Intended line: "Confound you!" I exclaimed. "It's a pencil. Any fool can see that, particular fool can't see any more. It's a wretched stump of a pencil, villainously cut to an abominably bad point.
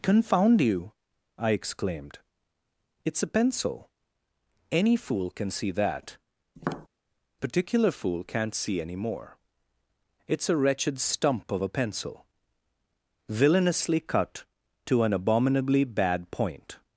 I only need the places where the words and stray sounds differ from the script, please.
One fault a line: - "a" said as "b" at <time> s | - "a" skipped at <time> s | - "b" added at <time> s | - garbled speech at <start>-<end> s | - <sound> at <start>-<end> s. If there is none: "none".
- tap at 6.6-6.9 s